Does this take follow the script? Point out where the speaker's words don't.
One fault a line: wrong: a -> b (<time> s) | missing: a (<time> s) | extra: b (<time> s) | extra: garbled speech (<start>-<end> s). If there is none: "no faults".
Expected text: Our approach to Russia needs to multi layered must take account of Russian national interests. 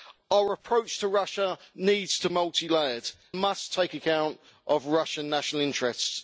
no faults